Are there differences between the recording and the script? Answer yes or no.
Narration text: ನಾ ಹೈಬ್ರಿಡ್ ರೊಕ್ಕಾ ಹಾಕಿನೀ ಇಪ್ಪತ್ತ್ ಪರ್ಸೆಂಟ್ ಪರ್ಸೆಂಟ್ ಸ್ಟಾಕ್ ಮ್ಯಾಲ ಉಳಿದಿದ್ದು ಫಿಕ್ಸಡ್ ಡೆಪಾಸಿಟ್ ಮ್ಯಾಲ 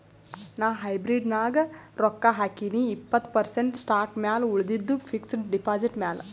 yes